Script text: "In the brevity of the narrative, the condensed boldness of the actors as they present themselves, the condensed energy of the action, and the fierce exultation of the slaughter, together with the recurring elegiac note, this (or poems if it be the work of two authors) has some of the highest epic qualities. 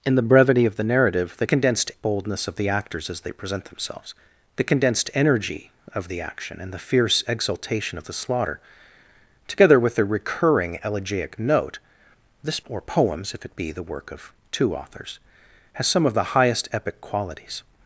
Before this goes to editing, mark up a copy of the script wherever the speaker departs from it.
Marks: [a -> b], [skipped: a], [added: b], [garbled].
"In the brevity of the narrative, the condensed boldness of the actors as they present themselves, the condensed energy of the action, and the fierce exultation of the slaughter, together with the recurring elegiac note, this (or poems if it be the work of two authors) has some of the highest epic qualities.